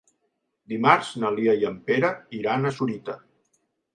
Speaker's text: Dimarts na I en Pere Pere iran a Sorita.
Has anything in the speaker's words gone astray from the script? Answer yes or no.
yes